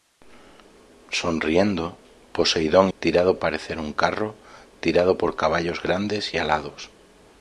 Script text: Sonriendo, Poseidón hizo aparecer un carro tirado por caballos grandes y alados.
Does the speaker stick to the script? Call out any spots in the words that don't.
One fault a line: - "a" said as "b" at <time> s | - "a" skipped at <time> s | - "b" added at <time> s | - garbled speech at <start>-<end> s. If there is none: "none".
- "hizo" said as "tirado" at 3.0 s